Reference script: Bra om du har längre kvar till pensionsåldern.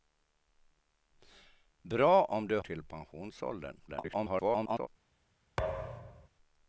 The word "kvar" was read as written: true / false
false